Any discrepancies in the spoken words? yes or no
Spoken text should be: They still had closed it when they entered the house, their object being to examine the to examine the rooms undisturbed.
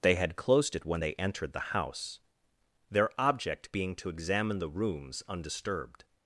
yes